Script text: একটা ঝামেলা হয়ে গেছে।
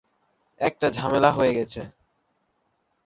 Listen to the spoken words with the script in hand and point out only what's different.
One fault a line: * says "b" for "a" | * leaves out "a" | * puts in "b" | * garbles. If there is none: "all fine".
all fine